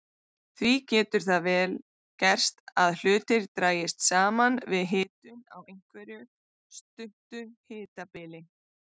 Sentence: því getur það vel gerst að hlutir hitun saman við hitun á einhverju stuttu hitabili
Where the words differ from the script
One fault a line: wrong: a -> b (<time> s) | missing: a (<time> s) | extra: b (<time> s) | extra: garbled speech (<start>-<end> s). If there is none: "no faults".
wrong: hitun -> dragist (3.6 s)